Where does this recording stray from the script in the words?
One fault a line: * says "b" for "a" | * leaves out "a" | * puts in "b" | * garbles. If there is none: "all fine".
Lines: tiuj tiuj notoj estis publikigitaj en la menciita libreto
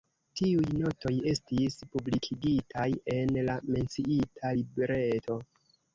* leaves out "tiuj"